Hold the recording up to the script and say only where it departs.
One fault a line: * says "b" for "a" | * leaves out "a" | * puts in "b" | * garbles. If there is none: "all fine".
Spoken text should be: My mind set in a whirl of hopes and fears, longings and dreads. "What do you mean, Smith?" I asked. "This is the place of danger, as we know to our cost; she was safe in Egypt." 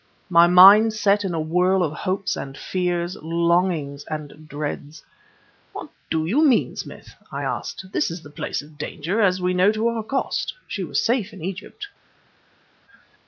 all fine